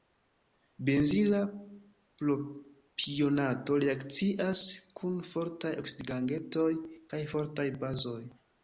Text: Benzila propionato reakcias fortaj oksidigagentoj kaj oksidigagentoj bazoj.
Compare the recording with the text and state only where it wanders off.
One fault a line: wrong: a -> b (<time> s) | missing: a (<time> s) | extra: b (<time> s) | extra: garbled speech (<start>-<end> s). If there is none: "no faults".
extra: kun (5.0 s)
wrong: oksidigagentoj -> fortaj (7.4 s)